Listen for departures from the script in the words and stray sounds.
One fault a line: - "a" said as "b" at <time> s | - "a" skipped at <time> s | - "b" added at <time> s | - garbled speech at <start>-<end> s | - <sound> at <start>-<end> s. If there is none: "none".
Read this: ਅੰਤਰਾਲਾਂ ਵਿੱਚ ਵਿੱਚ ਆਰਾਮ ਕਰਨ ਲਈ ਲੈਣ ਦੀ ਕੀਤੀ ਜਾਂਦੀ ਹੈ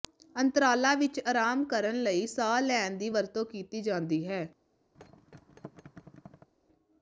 - "ਵਿੱਚ" skipped at 1.2 s
- "ਸਾਹ" added at 2.3 s
- "ਵਰਤੋਂ" added at 3.1 s
- thud at 4.9-6.5 s